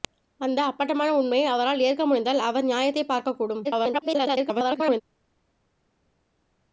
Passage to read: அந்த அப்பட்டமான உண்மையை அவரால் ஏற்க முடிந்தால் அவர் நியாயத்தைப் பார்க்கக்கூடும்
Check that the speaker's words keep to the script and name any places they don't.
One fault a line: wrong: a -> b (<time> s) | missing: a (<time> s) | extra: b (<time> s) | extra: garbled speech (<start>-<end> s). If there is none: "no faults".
extra: garbled speech (3.6-5.0 s)